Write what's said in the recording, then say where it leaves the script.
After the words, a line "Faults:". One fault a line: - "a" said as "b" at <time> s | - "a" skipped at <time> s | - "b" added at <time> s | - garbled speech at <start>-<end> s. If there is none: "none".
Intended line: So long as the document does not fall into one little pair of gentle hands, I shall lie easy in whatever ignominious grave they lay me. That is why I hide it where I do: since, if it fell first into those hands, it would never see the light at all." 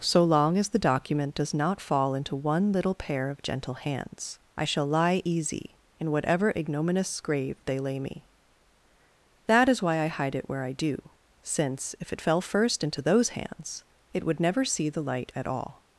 So long as the document does not fall into one little pair of gentle hands, I shall lie easy in whatever ignominious grave they lay me. That is why I hide it where I do: since, if it fell first into those hands, it would never see the light at all."
Faults:
none